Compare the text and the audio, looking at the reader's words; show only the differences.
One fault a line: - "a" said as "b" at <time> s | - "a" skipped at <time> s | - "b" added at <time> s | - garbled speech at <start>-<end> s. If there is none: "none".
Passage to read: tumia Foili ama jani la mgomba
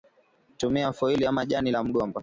none